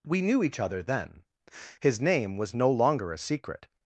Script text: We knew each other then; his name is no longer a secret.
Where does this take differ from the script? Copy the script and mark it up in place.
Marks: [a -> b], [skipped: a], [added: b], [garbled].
We knew each other then; his name [is -> was] no longer a secret.